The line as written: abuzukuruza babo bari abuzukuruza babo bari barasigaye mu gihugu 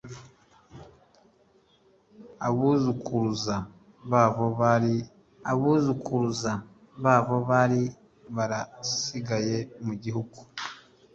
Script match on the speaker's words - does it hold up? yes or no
yes